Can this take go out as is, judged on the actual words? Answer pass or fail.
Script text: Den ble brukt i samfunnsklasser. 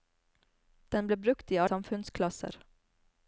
pass